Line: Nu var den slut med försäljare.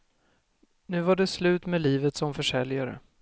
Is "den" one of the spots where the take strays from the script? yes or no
yes